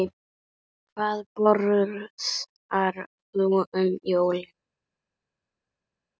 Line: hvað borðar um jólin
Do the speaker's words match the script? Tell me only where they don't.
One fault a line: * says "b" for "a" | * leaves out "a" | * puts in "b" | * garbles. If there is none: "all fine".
* puts in "þú"